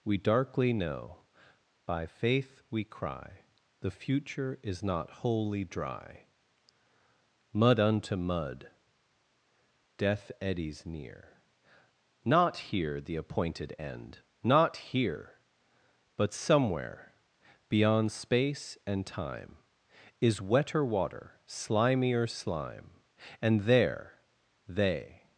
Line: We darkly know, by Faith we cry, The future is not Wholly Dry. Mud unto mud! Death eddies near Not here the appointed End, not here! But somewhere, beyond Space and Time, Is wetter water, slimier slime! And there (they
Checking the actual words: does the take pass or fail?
pass